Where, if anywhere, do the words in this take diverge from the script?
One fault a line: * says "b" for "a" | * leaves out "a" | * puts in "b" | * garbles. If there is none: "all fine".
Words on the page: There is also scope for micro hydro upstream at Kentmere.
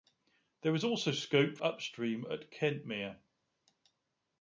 * leaves out "for micro hydro"